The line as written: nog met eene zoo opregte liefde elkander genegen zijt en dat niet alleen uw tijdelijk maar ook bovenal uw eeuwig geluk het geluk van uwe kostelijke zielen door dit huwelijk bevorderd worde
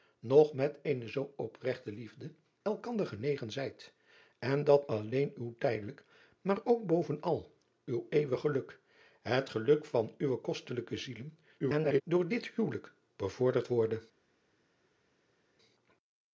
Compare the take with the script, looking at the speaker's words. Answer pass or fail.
fail